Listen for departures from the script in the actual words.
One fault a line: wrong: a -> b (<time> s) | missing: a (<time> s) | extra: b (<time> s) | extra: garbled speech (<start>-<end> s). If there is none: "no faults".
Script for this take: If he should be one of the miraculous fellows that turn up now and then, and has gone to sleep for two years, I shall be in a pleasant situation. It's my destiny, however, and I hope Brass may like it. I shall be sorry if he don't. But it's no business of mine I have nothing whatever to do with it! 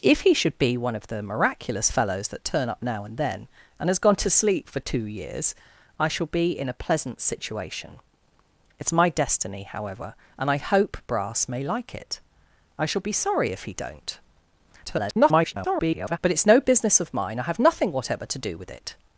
extra: garbled speech (14.9-16.2 s)